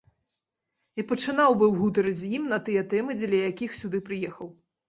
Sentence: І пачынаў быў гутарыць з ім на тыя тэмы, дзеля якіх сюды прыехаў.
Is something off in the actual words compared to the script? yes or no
no